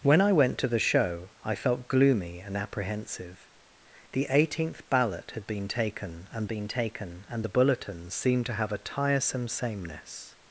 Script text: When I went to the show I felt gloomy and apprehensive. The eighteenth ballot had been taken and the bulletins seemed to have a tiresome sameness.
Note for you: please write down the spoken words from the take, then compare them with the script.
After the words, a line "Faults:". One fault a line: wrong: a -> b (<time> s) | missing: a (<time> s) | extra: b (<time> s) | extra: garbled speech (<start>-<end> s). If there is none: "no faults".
When I went to the show I felt gloomy and apprehensive. The eighteenth ballot had been taken and been taken and the bulletins seemed to have a tiresome sameness.
Faults:
extra: been taken and (6.5 s)